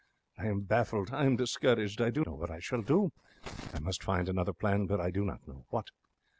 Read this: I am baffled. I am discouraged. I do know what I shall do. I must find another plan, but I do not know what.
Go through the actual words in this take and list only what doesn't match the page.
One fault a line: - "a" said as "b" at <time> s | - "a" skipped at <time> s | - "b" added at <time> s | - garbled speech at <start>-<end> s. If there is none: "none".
none